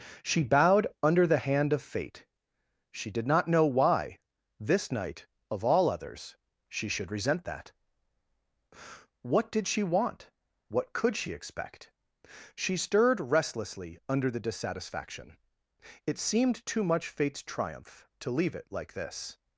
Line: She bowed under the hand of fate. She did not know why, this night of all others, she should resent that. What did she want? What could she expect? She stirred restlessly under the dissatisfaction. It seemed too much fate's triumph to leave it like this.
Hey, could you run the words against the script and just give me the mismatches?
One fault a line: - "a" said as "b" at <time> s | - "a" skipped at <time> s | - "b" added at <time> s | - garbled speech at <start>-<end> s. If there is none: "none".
none